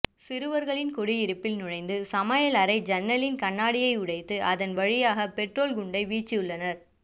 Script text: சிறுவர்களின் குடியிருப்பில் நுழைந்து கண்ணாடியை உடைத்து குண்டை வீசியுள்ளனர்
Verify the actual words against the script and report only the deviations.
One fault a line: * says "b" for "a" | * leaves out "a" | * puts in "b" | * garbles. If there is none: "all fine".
* puts in "சமையலறை ஜன்னலின்"
* puts in "அதன் வழியாக பெட்ரோல்"